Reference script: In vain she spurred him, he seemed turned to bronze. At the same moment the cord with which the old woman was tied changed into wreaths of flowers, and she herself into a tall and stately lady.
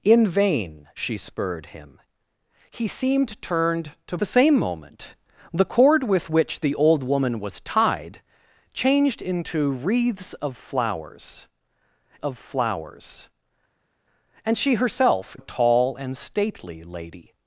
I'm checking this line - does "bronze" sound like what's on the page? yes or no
no